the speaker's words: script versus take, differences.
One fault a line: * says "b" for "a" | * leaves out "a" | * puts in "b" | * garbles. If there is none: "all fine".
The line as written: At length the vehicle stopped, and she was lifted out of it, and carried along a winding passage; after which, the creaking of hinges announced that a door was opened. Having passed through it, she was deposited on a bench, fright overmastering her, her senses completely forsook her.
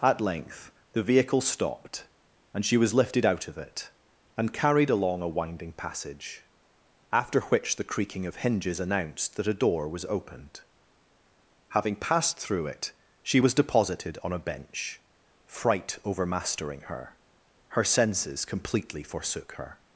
all fine